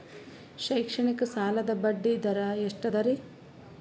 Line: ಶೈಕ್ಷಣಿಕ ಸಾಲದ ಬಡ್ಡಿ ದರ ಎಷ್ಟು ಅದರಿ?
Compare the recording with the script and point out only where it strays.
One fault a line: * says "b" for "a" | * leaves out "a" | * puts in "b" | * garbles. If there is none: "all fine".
all fine